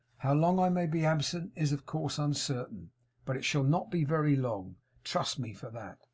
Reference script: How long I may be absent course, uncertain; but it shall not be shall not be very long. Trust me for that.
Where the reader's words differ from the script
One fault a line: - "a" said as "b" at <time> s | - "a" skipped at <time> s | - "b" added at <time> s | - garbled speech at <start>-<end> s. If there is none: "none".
- "is of" added at 1.6 s
- "shall not be" skipped at 4.1 s